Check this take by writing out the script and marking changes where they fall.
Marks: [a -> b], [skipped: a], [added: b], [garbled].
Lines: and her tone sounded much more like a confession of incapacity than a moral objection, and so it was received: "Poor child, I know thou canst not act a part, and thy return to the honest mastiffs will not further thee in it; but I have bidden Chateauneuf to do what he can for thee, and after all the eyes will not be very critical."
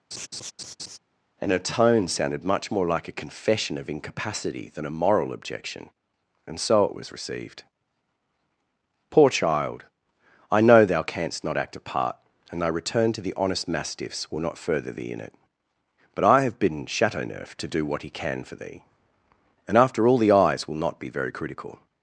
and her tone sounded much more like a confession of incapacity than a moral objection, and so it was received: "Poor child, I know thou canst not act a part, and thy return to the honest mastiffs will not further thee in it; but I have bidden Chateauneuf to do what he can for thee, and after all the eyes will not be very critical."